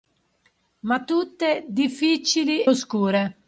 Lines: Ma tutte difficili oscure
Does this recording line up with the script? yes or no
yes